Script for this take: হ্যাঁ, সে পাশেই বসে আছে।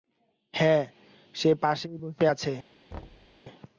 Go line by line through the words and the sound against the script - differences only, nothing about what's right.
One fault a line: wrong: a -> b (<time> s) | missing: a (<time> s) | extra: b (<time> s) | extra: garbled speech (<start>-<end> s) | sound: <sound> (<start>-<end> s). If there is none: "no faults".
sound: thud (2.9-3.4 s)